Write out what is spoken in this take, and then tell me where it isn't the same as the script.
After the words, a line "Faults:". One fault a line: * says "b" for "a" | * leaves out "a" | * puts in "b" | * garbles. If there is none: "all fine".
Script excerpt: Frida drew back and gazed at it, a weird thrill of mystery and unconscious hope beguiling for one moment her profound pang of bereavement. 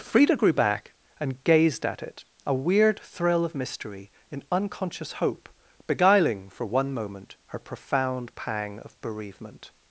Frida grew back and gazed at it, a weird thrill of mystery in unconscious hope beguiling for one moment her profound pang of bereavement.
Faults:
* says "grew" for "drew"
* says "in" for "and"